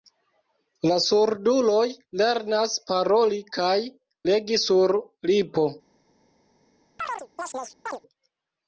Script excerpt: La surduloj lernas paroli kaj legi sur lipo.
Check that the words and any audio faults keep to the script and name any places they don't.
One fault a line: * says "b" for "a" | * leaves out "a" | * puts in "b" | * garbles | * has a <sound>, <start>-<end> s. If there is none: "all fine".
* has a chirp, 7.0-8.0 s